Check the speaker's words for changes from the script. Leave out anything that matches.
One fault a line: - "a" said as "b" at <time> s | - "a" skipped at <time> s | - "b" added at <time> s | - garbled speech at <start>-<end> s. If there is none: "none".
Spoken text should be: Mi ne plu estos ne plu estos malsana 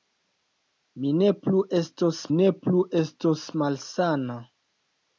none